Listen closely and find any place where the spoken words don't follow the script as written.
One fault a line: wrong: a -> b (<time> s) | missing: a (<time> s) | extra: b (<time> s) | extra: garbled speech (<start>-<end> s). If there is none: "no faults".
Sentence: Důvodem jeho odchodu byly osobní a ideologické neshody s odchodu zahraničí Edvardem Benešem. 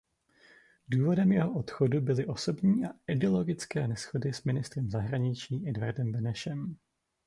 wrong: odchodu -> ministrem (4.4 s)